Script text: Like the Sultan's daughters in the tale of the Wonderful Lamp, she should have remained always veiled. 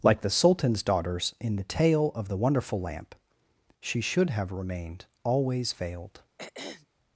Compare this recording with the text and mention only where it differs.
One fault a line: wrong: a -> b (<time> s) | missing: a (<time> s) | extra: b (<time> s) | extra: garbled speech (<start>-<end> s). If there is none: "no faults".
no faults